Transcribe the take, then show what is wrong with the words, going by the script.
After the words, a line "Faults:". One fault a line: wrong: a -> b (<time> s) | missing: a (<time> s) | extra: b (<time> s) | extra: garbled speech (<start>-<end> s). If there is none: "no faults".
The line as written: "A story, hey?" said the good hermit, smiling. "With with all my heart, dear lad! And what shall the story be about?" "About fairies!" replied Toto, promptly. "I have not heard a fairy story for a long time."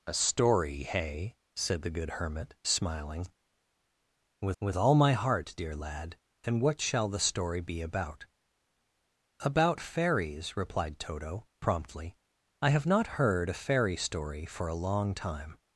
"A story, hey?" said the good hermit, smiling. "With with all my heart, dear lad! And what shall the story be about?" "About fairies!" replied Toto, promptly. "I have not heard a fairy story for a long time."
Faults:
no faults